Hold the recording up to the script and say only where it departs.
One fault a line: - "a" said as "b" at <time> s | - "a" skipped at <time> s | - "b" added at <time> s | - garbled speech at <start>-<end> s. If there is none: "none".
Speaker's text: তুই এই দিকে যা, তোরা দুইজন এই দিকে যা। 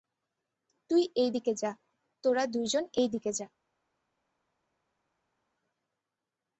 none